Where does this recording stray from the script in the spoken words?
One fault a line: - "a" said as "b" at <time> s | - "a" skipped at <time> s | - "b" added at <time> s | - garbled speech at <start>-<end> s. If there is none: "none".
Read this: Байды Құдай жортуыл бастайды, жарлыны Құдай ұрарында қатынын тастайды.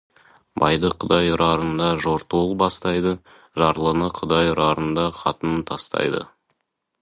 - "ұрарында" added at 1.3 s